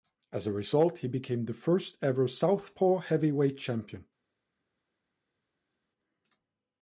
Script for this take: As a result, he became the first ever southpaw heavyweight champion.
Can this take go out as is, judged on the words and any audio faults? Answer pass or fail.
pass